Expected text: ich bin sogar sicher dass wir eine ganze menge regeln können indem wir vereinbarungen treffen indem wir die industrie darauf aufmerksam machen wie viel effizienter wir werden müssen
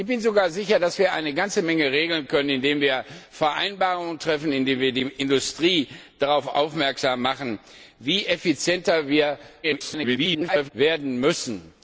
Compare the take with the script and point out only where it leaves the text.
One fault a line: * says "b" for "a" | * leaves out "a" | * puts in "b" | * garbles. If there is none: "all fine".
* garbles